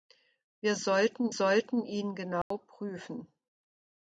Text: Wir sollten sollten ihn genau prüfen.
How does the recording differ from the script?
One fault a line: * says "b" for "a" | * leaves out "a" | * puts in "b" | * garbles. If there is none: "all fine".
all fine